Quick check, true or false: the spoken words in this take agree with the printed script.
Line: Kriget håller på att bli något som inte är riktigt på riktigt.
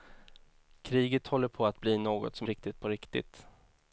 false